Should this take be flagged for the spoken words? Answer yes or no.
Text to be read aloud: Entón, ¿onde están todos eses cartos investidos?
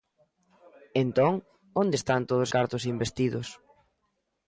yes